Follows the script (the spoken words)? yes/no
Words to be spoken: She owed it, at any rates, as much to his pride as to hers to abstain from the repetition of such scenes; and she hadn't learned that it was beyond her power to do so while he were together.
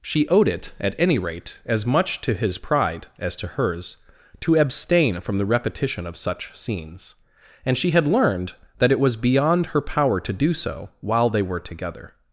no